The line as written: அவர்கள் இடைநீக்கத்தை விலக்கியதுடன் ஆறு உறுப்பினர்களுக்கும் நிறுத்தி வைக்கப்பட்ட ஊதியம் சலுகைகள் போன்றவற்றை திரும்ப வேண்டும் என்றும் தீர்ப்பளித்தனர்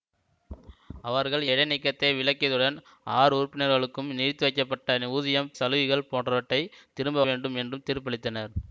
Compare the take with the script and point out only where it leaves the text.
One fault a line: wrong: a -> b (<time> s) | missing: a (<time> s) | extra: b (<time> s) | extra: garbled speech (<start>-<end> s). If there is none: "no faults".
no faults